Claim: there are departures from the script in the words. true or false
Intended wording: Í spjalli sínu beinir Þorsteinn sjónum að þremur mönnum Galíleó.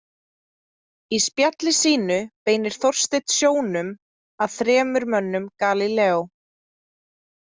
false